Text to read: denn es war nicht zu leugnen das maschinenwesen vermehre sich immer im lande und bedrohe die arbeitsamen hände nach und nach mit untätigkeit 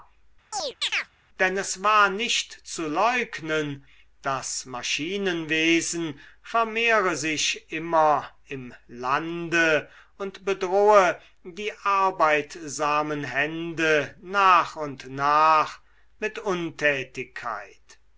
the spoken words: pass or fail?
pass